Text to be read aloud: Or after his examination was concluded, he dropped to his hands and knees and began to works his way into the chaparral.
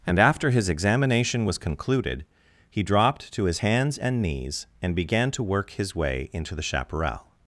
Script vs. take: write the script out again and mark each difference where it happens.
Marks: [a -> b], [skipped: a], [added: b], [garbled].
[Or -> And] after his examination was concluded, he dropped to his hands and knees and began to [works -> work] his way into the chaparral.